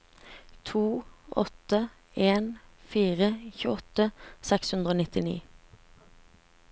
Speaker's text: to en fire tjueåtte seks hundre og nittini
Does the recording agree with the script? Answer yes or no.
no